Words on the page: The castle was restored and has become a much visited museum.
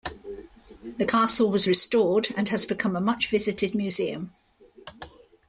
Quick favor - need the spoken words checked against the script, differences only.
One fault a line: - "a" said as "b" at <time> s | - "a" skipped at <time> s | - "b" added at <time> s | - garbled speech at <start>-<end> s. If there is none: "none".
none